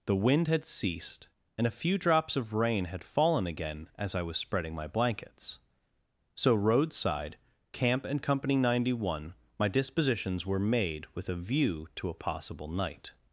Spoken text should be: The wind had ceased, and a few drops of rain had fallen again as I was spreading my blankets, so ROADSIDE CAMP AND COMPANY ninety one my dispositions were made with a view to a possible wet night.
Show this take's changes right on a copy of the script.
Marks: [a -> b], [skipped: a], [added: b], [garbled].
The wind had ceased, and a few drops of rain had fallen again as I was spreading my blankets, so ROADSIDE CAMP AND COMPANY ninety one my dispositions were made with a view to a possible [skipped: wet] night.